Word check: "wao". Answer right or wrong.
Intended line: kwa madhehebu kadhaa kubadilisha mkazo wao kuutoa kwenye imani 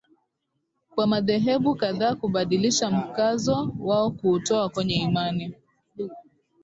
right